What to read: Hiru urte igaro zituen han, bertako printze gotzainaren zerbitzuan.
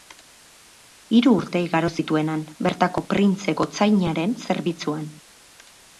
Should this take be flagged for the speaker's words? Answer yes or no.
no